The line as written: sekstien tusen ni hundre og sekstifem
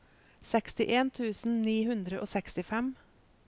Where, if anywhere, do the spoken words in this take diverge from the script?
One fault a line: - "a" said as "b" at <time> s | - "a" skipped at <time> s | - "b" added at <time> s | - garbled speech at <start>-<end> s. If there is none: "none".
none